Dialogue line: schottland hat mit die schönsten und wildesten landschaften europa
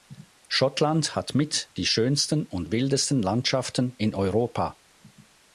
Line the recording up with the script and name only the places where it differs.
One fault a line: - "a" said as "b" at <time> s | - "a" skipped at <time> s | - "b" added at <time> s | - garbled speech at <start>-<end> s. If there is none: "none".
- "in" added at 4.0 s